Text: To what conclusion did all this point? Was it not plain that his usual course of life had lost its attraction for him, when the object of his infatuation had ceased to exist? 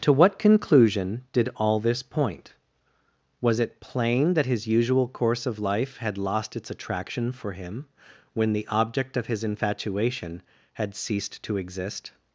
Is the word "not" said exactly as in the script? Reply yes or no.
no